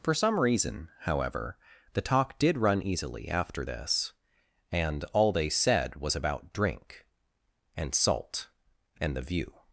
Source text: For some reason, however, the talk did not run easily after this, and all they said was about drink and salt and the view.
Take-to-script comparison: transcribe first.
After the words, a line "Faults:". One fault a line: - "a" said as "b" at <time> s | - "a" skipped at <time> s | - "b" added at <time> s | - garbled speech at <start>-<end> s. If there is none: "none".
For some reason, however, the talk did run easily after this, and all they said was about drink and salt and the view.
Faults:
- "not" skipped at 2.6 s